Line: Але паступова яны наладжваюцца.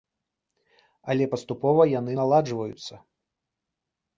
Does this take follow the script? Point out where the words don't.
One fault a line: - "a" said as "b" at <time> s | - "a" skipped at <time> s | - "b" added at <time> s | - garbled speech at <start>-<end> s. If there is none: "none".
none